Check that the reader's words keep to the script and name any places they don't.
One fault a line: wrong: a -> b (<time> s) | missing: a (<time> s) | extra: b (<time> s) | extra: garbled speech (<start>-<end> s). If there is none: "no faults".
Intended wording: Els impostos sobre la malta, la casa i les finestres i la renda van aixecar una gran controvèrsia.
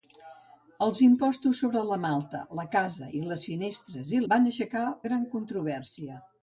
missing: la renda (4.2 s)
missing: una (4.8 s)